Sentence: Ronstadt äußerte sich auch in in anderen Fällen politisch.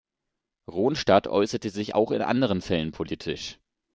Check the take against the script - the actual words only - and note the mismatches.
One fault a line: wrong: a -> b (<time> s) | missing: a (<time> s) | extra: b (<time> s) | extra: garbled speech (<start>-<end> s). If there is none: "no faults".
missing: in (2.2 s)